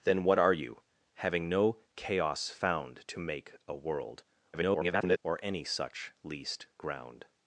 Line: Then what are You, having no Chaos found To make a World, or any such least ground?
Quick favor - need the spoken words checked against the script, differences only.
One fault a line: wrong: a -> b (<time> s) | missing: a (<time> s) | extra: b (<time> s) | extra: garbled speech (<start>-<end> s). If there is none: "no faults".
extra: garbled speech (4.5-5.2 s)